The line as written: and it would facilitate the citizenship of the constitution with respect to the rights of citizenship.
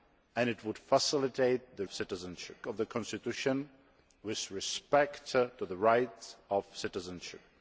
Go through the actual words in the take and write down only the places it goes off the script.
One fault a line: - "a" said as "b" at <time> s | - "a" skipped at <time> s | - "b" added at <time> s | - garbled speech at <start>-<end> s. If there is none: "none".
none